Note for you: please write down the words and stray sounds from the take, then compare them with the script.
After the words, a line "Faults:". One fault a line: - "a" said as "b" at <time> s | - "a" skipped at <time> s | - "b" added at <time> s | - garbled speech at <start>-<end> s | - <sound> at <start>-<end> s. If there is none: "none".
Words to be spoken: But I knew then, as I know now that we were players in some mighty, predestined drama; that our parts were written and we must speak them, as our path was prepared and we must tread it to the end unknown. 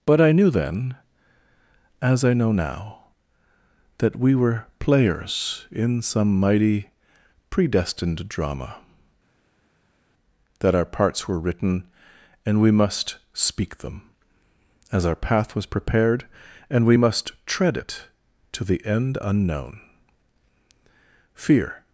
But I knew then, as I know now that we were players in some mighty, predestined drama; that our parts were written and we must speak them, as our path was prepared and we must tread it to the end unknown. Fear
Faults:
- "Fear" added at 21.3 s